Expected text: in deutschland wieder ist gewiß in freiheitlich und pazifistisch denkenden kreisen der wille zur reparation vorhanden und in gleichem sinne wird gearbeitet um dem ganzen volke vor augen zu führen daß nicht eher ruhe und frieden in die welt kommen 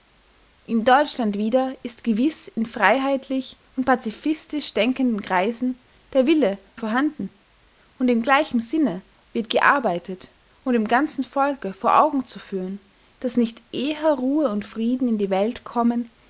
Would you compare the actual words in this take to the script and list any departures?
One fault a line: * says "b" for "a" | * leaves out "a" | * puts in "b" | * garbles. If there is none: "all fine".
* leaves out "zur reparation"